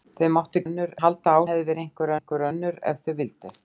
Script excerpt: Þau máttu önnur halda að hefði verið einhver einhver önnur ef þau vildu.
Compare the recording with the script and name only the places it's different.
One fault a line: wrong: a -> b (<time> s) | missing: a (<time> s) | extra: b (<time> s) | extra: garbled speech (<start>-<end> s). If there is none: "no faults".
no faults